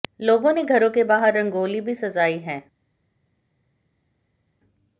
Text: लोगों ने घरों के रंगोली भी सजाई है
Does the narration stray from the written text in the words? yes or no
yes